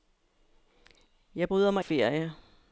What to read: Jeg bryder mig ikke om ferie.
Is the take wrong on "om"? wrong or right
wrong